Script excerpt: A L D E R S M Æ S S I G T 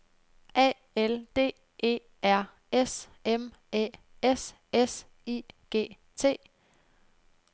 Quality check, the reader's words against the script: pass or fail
pass